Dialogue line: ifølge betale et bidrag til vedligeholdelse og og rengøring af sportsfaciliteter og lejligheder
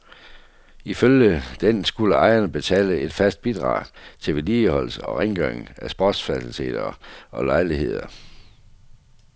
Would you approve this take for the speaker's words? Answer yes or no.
no